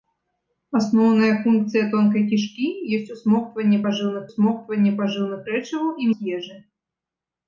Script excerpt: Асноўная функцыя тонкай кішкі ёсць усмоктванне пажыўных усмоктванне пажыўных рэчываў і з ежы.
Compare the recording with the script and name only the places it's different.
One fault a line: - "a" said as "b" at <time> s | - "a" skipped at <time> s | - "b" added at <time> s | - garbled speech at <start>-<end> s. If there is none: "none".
none